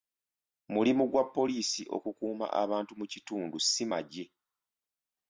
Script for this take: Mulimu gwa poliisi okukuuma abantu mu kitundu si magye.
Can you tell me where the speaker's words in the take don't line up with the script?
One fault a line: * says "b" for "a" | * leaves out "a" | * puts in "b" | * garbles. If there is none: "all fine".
all fine